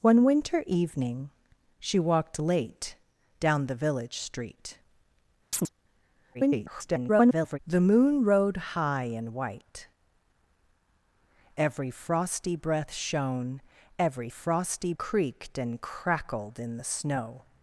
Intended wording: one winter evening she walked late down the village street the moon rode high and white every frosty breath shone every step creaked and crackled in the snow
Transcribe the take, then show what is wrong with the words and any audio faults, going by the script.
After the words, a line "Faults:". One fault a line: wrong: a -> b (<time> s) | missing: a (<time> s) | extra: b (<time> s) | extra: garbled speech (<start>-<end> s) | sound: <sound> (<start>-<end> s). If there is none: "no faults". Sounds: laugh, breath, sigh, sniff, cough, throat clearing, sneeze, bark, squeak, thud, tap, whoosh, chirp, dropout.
one winter evening she walked late down the village street [garbled] the moon rode high and white every frosty breath shone every frosty creaked and crackled in the snow
Faults:
sound: chirp (5.5-5.7 s)
extra: garbled speech (6.3-7.6 s)
wrong: step -> frosty (14.3 s)